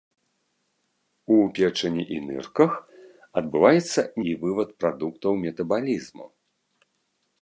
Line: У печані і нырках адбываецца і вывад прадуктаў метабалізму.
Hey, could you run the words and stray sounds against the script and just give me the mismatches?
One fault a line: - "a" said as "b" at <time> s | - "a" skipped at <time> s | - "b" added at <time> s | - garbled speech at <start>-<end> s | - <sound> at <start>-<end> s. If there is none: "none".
none